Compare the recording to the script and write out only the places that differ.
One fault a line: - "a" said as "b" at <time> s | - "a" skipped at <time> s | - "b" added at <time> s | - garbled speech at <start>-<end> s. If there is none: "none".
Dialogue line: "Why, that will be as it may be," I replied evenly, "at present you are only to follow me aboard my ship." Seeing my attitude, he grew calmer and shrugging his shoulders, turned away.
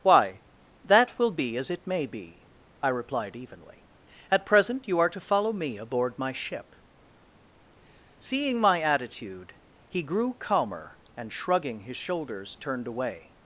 - "only" skipped at 5.1 s